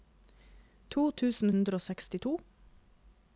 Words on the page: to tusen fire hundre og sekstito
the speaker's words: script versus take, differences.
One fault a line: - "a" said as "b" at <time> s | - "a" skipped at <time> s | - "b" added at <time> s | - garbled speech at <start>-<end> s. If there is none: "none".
- "fire" skipped at 1.5 s